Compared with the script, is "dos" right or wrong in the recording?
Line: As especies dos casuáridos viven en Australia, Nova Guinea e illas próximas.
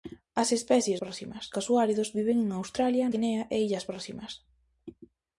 wrong